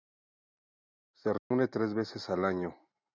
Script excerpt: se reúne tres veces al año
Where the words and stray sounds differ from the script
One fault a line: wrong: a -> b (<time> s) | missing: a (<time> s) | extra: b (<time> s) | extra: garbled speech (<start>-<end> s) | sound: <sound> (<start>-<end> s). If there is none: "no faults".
sound: dropout (1.4-1.5 s)